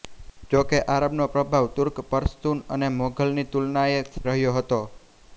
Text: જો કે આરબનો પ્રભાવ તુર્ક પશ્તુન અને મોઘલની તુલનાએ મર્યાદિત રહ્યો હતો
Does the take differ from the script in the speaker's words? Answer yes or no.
yes